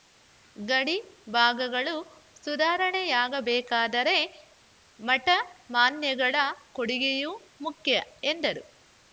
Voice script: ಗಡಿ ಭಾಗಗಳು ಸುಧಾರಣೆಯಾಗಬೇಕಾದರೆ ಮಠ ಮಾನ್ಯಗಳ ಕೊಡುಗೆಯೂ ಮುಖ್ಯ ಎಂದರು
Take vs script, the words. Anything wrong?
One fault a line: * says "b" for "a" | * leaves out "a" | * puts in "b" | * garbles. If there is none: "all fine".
all fine